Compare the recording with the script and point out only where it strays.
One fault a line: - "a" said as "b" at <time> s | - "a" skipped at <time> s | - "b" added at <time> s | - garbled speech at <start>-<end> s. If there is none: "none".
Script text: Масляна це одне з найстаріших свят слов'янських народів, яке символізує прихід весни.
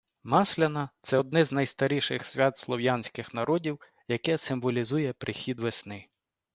none